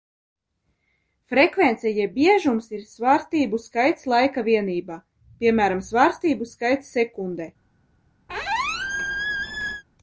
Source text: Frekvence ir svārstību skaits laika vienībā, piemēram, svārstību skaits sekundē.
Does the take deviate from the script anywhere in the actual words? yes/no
yes